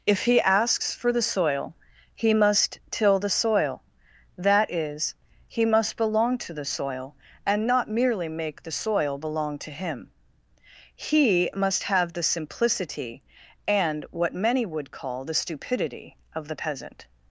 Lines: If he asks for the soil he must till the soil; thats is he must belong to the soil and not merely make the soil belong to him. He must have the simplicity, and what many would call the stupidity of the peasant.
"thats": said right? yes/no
no